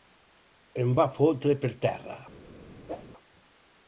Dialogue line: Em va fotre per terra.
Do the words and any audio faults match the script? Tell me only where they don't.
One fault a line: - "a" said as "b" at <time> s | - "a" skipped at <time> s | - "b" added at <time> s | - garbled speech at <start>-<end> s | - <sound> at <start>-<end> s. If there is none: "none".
- whoosh at 2.9-3.0 s